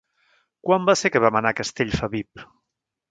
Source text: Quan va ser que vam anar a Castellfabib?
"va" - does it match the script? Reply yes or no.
yes